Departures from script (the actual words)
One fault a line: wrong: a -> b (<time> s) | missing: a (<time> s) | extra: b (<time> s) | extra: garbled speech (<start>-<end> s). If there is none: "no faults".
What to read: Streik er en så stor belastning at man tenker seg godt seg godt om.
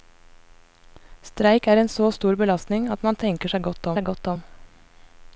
no faults